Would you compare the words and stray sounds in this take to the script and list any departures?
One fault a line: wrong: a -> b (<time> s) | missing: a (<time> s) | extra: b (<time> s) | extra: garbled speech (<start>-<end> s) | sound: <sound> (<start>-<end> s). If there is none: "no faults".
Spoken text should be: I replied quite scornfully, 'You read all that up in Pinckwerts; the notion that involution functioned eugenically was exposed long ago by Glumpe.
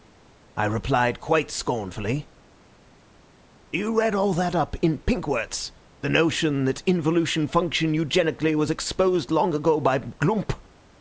no faults